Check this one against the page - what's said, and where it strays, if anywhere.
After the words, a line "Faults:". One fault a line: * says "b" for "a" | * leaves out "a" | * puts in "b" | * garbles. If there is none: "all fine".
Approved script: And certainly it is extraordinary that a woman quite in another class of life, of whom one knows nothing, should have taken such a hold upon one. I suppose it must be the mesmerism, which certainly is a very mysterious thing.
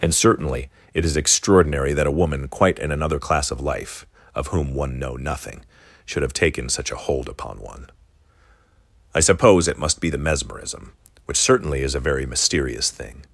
And certainly it is extraordinary that a woman quite in another class of life, of whom one know nothing, should have taken such a hold upon one. I suppose it must be the mesmerism, which certainly is a very mysterious thing.
Faults:
* says "know" for "knows"